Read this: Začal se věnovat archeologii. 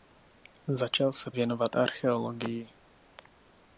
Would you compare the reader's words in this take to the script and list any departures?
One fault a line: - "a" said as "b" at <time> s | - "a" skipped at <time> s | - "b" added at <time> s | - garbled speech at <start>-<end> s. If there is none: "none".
none